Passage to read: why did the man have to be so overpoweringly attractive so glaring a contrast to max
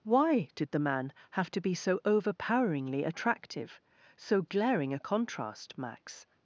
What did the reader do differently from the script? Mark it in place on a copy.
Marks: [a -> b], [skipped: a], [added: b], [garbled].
why did the man have to be so overpoweringly attractive so glaring a contrast [skipped: to] max